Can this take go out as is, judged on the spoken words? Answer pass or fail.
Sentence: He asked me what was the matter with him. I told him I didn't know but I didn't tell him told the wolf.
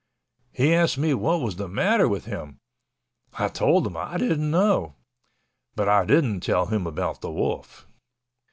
fail